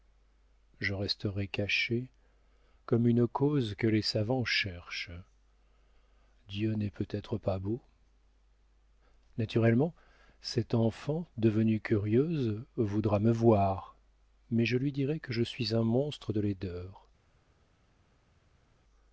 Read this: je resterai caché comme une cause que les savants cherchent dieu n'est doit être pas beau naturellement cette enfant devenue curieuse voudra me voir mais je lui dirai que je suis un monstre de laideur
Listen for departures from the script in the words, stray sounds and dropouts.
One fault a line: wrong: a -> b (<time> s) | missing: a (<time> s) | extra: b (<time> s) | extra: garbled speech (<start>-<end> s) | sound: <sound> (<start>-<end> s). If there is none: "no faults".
wrong: doit -> peut (6.9 s)